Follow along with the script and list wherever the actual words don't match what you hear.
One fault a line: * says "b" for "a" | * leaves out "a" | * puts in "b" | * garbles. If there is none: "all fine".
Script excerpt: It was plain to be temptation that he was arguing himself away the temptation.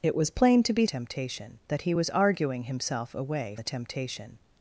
all fine